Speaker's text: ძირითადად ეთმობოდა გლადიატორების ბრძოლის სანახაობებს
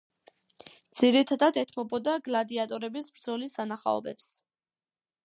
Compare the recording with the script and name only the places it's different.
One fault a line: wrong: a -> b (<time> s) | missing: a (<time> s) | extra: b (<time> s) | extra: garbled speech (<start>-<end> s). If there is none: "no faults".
no faults